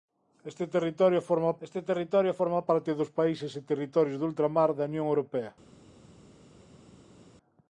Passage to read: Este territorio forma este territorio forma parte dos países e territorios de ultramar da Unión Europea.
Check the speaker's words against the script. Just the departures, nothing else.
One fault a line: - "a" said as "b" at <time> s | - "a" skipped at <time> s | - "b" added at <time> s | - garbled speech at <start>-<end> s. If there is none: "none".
none